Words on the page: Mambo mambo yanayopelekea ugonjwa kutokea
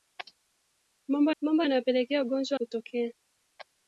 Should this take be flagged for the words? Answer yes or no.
no